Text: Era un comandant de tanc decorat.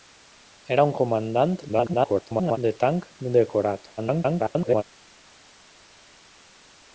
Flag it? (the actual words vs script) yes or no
yes